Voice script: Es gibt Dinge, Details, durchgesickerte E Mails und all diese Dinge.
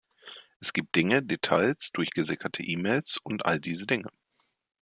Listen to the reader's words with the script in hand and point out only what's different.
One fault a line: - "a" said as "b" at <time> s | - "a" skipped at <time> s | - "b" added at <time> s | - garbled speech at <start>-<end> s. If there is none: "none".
none